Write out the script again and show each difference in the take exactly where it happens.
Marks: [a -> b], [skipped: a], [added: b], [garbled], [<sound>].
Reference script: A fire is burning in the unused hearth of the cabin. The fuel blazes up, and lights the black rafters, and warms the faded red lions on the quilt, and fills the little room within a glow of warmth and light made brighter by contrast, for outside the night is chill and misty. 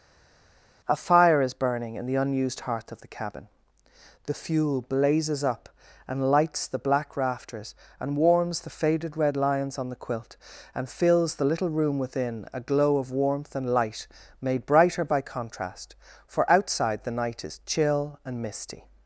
A fire is burning in the unused hearth of the cabin. The fuel blazes up, and lights the black rafters, and warms the faded red lions on the quilt, and fills the little room within a glow of warmth and light made brighter by contrast, for outside the night is chill and misty.